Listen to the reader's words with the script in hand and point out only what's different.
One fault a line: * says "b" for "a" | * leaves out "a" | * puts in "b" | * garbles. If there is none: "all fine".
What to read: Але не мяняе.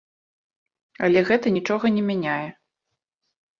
* puts in "гэта нічога"